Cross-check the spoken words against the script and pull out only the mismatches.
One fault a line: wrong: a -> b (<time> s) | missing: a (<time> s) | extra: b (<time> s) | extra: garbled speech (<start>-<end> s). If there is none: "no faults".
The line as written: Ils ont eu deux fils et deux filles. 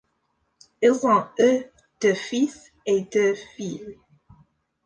no faults